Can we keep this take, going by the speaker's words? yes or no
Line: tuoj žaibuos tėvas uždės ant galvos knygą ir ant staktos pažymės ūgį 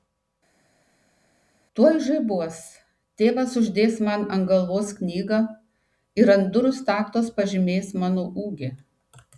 no